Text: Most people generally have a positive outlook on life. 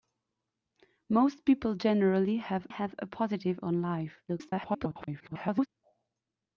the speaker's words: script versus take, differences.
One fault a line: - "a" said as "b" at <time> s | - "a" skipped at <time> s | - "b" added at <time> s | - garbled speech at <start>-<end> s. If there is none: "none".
- "have" added at 2.7 s
- "outlook" skipped at 3.6 s
- garbled speech at 4.3-5.7 s